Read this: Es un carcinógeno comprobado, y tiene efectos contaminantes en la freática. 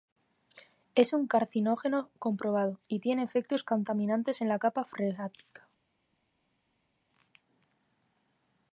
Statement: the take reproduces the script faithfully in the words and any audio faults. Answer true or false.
false